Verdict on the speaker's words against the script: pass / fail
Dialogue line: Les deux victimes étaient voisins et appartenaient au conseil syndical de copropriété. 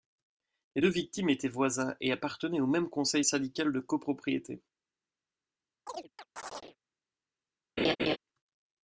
fail